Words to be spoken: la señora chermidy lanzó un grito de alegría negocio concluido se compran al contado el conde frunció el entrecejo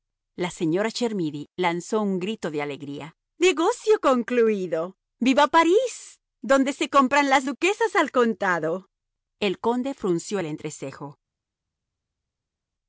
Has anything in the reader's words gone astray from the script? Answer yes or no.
yes